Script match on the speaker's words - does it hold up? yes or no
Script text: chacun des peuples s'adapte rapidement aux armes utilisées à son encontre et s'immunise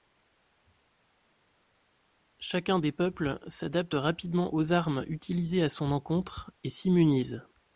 yes